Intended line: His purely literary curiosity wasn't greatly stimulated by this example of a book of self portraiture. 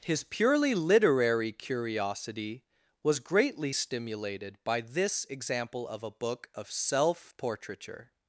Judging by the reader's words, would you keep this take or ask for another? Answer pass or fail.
fail